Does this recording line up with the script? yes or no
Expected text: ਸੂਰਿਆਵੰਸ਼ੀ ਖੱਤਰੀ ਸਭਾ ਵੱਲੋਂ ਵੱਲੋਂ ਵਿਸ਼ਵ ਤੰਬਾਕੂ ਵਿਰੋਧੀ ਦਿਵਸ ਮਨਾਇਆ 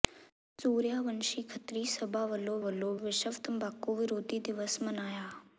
yes